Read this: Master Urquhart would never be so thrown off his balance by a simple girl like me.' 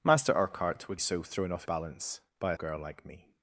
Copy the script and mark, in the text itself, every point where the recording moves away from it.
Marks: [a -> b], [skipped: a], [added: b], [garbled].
Master Urquhart would [skipped: never be] so thrown off [skipped: his] balance by a [skipped: simple] girl like me.'